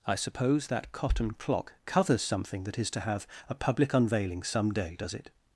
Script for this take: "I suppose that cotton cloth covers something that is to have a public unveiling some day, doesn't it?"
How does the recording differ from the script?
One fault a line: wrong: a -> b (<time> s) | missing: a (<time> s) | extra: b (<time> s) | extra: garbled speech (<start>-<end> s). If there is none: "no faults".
wrong: cloth -> clock (1.3 s)
wrong: doesn't -> does (5.0 s)